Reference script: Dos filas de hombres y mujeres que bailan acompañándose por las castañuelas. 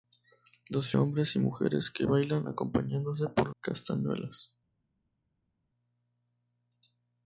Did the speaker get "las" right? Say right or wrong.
wrong